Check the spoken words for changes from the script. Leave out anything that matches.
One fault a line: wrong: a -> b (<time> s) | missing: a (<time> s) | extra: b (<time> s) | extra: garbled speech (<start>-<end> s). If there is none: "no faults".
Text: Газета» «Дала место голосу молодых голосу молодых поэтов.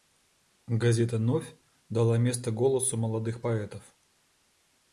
extra: Новь (1.2 s)
missing: голосу молодых (3.4 s)